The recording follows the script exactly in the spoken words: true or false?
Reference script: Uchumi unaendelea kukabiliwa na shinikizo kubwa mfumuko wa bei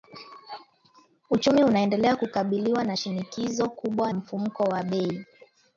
true